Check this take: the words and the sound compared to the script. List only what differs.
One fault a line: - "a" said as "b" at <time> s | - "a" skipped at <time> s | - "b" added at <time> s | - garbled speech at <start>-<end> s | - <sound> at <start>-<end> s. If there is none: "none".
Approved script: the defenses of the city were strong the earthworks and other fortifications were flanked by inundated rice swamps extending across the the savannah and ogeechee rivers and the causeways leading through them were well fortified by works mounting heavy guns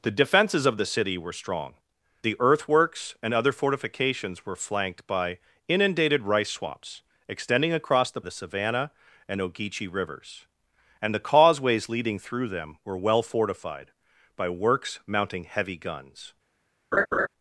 - laugh at 16.9-17.3 s